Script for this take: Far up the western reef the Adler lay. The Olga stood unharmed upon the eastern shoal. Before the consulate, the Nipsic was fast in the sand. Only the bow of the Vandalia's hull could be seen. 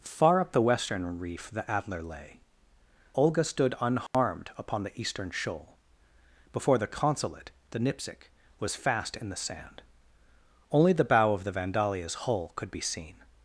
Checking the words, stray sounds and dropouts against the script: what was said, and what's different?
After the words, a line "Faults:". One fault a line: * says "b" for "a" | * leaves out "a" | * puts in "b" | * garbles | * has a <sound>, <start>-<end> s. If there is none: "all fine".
Far up the western reef the Adler lay. Olga stood unharmed upon the eastern shoal. Before the consulate, the Nipsic was fast in the sand. Only the bow of the Vandalia's hull could be seen.
Faults:
* leaves out "The"
* has a dropout, 4.1-4.1 s